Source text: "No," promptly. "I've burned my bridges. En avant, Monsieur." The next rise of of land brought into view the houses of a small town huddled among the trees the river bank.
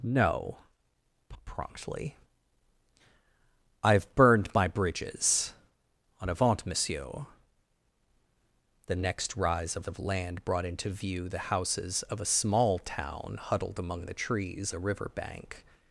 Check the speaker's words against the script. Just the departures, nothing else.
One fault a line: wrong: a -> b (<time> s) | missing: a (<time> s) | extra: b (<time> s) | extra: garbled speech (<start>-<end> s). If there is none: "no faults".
no faults